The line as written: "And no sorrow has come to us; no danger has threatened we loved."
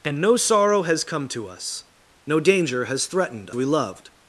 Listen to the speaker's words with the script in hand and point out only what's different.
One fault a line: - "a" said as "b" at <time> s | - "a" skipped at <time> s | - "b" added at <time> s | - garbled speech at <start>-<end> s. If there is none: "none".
none